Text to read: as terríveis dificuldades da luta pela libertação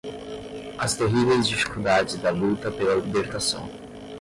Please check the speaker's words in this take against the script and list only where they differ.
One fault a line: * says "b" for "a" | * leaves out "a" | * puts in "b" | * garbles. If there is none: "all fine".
all fine